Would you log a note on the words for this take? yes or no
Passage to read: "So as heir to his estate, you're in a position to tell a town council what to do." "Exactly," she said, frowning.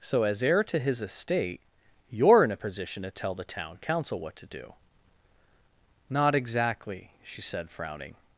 yes